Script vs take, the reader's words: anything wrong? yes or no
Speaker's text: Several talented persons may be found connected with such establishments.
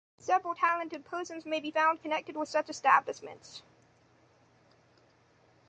no